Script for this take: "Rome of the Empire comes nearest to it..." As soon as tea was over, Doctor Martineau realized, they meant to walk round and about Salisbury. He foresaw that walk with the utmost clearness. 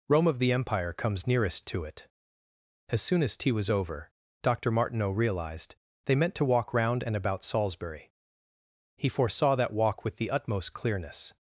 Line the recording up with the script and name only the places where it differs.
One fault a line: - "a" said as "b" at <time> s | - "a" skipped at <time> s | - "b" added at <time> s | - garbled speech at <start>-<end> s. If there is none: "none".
none